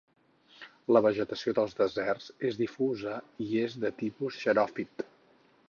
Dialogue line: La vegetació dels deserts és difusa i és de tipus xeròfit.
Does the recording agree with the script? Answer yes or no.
yes